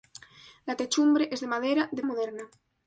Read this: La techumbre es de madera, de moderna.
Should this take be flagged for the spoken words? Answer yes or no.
no